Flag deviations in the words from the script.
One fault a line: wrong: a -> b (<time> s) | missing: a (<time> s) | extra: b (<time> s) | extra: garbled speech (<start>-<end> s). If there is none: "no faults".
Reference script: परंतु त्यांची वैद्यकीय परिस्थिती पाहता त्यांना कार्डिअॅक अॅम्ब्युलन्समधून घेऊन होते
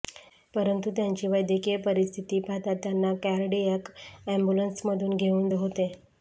no faults